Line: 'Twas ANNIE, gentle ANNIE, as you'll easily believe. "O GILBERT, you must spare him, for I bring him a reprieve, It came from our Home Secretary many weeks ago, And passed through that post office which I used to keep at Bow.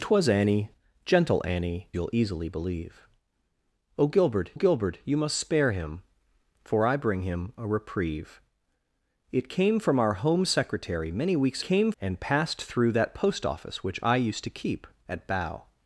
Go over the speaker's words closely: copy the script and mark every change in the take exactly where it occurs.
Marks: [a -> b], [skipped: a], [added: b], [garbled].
'Twas ANNIE, gentle ANNIE, [skipped: as] you'll easily believe. "O GILBERT, [added: GILBERT] you must spare him, for I bring him a reprieve, It came from our Home Secretary many weeks [ago, -> came] And passed through that post office which I used to keep at Bow.